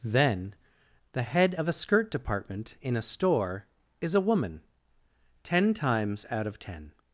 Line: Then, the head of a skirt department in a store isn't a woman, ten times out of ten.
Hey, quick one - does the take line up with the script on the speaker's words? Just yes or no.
no